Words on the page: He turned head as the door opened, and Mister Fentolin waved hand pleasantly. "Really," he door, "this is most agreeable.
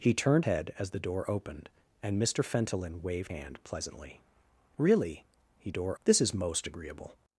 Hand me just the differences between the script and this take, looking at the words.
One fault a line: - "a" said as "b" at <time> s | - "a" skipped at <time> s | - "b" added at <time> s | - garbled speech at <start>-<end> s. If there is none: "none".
none